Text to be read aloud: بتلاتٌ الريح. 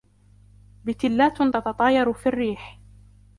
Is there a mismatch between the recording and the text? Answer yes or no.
yes